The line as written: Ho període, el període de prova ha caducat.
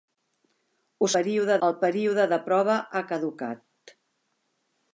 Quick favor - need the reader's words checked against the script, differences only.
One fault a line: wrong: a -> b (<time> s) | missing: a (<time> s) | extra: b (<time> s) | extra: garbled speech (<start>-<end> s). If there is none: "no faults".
no faults